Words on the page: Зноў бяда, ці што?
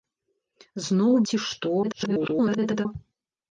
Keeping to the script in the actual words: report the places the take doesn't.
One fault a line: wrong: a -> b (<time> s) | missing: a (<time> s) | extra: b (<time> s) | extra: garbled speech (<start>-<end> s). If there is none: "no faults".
missing: бяда (1.1 s)
extra: garbled speech (1.8-2.9 s)